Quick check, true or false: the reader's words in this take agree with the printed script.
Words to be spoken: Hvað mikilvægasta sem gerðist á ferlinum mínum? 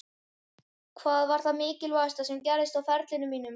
false